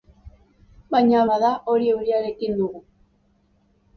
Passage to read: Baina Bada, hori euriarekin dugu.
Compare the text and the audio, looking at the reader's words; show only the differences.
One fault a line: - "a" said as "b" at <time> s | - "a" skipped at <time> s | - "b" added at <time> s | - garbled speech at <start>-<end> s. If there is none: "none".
none